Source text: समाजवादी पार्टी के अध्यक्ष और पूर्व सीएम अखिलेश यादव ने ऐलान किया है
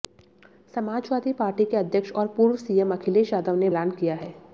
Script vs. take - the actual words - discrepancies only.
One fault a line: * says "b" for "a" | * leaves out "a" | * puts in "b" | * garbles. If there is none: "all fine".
all fine